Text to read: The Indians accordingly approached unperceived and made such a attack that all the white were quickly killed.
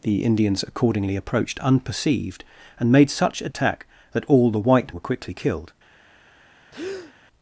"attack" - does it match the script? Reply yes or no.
yes